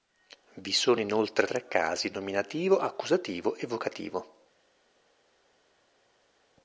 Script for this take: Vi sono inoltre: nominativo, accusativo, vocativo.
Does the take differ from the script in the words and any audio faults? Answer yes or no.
yes